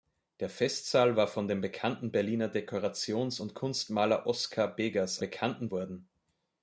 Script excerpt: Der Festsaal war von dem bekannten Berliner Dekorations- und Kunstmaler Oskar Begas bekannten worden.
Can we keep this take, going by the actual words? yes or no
yes